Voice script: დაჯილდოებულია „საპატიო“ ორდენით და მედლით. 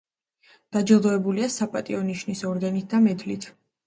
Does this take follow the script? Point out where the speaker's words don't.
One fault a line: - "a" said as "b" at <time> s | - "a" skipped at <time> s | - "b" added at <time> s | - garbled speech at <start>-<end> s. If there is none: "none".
- "ნიშნის" added at 2.1 s